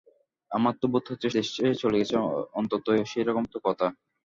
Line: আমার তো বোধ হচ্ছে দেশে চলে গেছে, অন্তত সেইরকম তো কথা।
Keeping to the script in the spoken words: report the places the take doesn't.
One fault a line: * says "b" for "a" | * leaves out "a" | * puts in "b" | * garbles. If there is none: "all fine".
all fine